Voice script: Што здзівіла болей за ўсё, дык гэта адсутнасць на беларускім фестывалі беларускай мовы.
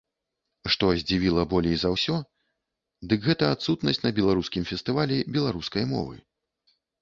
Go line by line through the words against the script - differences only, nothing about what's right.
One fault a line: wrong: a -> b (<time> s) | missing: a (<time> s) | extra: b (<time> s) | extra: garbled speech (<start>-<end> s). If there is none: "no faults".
no faults